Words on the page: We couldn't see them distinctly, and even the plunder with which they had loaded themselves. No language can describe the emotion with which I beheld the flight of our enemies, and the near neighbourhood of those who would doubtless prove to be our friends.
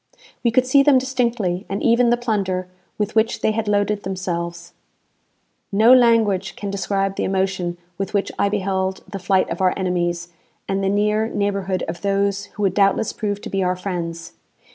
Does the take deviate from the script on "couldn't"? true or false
true